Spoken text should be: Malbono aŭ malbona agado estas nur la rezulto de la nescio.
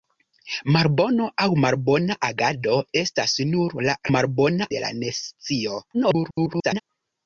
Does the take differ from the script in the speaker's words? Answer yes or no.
yes